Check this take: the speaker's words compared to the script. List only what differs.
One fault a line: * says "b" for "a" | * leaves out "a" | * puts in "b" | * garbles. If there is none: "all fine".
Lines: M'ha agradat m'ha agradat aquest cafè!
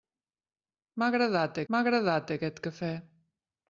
all fine